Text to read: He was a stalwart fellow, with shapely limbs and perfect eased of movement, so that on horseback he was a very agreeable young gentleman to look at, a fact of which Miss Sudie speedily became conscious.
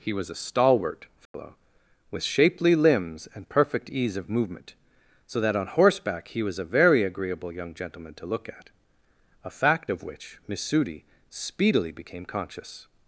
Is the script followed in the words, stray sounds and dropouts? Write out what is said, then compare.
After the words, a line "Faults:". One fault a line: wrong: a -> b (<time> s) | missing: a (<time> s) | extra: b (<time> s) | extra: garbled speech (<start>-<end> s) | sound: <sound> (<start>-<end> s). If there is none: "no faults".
He was a stalwart fellow, with shapely limbs and perfect ease of movement, so that on horseback he was a very agreeable young gentleman to look at, a fact of which Miss Sudie speedily became conscious.
Faults:
sound: dropout (1.3-1.3 s)
wrong: eased -> ease (3.9 s)